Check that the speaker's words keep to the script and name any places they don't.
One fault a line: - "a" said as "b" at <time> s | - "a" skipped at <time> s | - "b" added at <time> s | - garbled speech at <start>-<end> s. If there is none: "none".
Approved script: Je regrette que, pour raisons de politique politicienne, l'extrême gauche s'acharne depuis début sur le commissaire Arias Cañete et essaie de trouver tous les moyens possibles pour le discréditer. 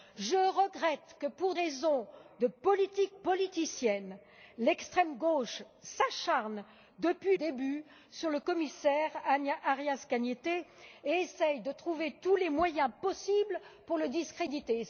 none